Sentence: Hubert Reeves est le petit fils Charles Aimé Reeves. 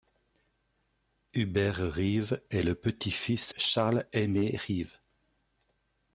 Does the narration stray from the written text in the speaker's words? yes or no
no